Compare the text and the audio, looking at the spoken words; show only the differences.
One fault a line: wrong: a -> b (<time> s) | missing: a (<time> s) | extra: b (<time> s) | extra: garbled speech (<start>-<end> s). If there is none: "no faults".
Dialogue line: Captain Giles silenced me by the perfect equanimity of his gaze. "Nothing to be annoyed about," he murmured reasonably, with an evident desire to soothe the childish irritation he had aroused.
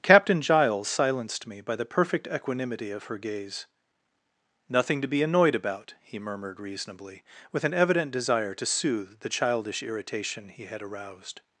wrong: his -> her (3.0 s)